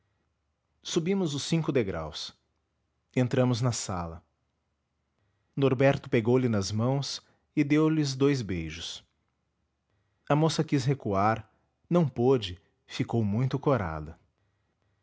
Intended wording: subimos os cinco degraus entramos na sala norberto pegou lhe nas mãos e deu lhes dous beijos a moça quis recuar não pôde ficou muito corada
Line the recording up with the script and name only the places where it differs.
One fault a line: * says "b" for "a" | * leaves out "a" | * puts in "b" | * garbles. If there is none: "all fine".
all fine